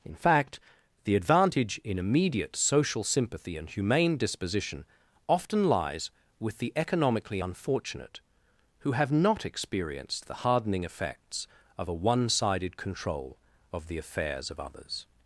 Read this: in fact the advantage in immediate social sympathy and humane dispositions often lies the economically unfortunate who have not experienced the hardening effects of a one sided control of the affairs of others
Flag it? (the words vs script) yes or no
yes